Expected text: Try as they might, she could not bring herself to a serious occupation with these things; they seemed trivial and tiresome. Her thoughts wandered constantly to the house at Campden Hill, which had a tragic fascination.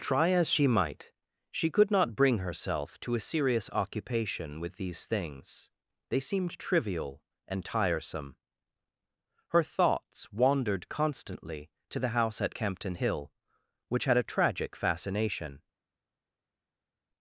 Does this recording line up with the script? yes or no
no